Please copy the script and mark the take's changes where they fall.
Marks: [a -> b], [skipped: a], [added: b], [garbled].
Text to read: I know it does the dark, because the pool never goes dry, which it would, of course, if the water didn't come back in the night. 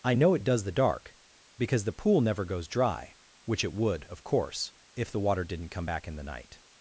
I know it does the dark, because the pool never goes dry, which it would, of course, if the water didn't come back in the night.